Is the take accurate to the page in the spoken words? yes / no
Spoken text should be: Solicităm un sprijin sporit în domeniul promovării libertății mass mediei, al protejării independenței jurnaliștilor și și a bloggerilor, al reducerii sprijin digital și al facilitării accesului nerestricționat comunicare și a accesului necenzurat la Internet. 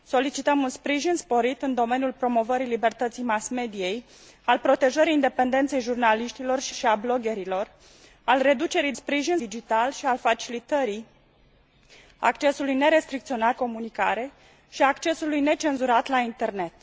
yes